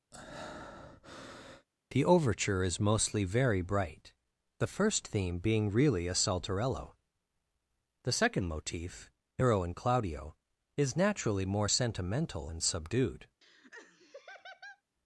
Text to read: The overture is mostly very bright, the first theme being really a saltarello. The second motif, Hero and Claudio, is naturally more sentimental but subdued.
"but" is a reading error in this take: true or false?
true